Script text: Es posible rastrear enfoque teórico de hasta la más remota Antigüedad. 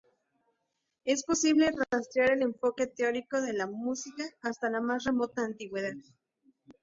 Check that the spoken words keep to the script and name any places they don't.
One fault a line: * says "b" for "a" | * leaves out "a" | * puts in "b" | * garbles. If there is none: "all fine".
* puts in "el"
* puts in "la música"